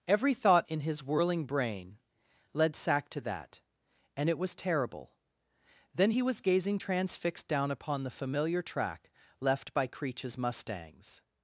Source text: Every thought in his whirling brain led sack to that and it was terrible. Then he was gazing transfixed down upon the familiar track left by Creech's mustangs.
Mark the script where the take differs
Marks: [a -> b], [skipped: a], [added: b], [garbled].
Every thought in his whirling brain led sack to that and it was terrible. Then he was gazing transfixed down upon the familiar track left by Creech's mustangs.